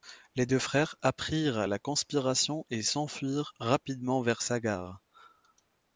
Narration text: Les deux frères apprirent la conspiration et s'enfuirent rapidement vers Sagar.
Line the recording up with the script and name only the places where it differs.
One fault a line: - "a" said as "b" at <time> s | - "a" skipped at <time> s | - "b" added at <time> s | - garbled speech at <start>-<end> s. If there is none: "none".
none